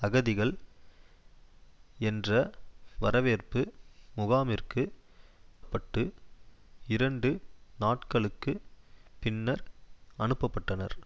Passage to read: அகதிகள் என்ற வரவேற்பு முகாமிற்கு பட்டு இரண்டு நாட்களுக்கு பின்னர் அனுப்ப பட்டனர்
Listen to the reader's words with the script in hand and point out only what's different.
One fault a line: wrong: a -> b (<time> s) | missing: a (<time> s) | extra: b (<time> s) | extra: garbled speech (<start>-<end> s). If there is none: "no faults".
no faults